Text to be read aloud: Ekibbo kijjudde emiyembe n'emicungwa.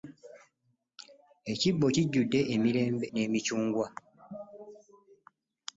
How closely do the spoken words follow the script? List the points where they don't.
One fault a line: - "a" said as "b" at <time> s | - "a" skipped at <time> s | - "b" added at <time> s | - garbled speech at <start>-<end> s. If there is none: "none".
- "emiyembe" skipped at 2.4 s